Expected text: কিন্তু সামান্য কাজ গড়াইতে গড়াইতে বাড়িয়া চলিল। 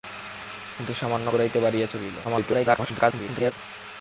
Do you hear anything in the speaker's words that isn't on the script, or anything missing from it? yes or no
yes